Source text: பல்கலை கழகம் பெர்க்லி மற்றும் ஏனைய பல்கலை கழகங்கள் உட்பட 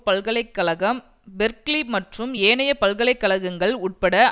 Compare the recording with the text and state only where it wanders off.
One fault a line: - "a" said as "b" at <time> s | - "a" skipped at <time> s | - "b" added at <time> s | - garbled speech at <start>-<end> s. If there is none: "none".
none